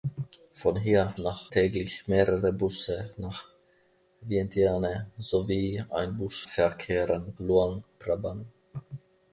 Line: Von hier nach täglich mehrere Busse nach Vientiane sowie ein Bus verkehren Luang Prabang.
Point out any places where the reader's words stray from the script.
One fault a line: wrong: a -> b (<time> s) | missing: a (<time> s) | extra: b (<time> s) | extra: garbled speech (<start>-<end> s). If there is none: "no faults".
no faults